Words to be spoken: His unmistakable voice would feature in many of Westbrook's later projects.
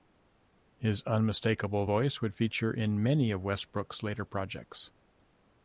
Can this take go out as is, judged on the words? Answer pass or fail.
pass